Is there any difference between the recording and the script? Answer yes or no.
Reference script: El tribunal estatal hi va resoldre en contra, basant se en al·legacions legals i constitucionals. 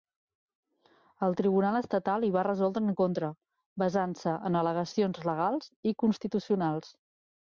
no